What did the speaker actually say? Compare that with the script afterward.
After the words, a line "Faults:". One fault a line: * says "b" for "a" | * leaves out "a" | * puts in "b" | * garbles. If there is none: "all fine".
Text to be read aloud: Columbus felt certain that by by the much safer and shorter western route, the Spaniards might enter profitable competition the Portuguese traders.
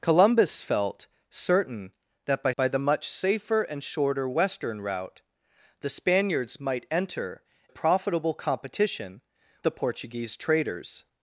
Columbus felt certain that by by the much safer and shorter western route, the Spaniards might enter profitable competition the Portuguese traders.
Faults:
all fine